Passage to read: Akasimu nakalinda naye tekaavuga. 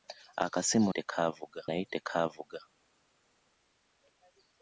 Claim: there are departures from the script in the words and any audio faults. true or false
true